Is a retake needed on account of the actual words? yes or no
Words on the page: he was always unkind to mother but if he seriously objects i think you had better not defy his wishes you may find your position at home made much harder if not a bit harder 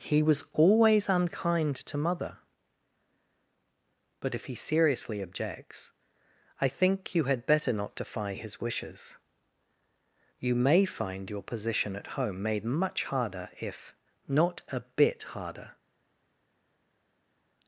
no